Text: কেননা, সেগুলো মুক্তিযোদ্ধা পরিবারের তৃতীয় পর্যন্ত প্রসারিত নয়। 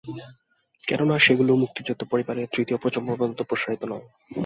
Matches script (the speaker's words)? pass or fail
fail